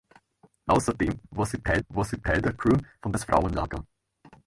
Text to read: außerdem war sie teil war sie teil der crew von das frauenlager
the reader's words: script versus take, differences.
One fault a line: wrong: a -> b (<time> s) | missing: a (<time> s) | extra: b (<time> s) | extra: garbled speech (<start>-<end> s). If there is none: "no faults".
no faults